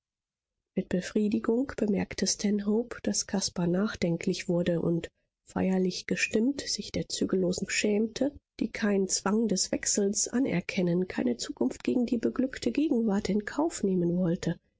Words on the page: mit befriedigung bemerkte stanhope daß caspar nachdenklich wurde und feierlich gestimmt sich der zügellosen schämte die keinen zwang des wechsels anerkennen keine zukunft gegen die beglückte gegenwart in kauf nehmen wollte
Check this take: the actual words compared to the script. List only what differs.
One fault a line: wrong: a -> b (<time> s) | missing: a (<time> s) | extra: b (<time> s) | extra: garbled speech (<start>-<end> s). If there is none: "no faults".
no faults